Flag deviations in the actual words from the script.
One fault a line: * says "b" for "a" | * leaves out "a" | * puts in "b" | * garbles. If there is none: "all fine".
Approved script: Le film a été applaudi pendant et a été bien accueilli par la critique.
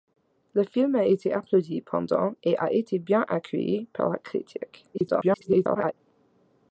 * garbles